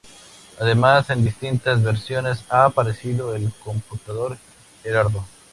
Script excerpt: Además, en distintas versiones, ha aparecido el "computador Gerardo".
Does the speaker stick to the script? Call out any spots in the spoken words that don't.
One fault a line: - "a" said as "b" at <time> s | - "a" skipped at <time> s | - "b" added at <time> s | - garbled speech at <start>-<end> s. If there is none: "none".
none